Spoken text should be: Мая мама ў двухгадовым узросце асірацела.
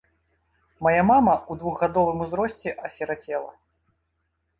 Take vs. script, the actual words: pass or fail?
pass